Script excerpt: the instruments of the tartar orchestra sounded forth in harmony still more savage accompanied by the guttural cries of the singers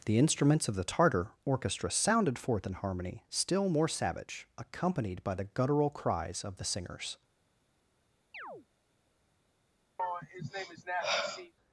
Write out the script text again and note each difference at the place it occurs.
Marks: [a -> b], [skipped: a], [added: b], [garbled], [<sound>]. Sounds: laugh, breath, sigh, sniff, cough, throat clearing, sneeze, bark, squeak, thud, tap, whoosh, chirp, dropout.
the instruments of the tartar orchestra sounded forth in harmony still more savage accompanied by the guttural cries of the singers [chirp] [sigh]